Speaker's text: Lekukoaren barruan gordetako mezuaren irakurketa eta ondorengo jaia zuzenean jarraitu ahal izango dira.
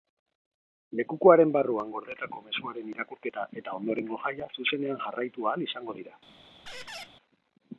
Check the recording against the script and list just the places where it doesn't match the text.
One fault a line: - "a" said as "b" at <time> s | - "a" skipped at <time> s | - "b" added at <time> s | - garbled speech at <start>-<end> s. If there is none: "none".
none